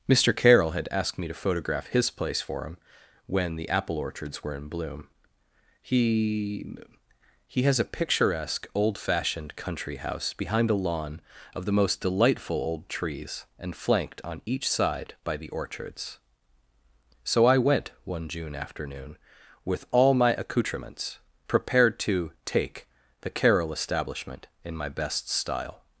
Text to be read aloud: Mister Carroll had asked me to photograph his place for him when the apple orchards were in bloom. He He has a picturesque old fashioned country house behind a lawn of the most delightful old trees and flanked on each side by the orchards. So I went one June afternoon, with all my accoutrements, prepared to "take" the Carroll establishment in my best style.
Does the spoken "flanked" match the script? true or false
true